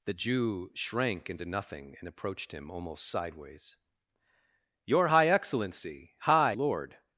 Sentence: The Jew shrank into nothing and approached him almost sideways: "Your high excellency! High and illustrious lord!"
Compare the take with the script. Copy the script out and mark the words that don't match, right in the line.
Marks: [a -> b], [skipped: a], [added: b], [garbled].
The Jew shrank into nothing and approached him almost sideways: "Your high excellency! High [skipped: and illustrious] lord!"